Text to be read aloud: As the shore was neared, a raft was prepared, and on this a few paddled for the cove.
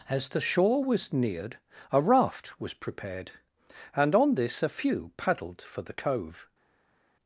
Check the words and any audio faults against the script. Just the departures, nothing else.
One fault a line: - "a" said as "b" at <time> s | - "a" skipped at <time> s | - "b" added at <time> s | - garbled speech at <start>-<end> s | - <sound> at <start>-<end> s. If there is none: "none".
none